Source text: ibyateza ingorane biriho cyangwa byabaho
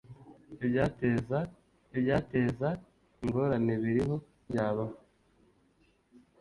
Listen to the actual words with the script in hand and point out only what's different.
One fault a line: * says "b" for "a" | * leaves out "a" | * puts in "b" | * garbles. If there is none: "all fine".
* puts in "ibyateza"
* leaves out "cyangwa"